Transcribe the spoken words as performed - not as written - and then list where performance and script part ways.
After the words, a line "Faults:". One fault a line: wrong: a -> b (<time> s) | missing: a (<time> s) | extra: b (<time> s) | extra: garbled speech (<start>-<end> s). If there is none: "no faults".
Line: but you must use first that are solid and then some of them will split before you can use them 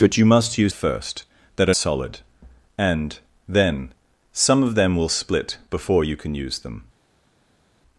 but you must use first that are solid and then some of them will split before you can use them
Faults:
no faults